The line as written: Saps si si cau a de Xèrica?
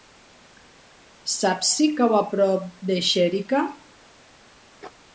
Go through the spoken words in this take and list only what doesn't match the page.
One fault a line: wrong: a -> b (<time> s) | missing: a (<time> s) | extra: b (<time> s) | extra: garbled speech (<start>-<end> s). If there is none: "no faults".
missing: si (1.9 s)
extra: prop (2.3 s)